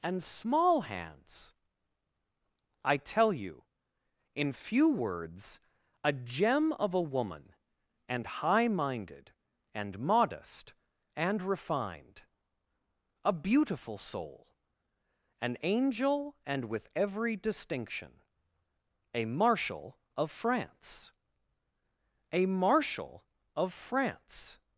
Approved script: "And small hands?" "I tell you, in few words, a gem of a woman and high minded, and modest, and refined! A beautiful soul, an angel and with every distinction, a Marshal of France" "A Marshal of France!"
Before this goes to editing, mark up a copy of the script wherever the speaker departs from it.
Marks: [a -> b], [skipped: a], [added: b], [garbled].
"And small hands?" "I tell you, in few words, a gem of a woman and high minded, and modest, and refined! A beautiful soul, an angel and with every distinction, a Marshal of France" "A Marshal of France!"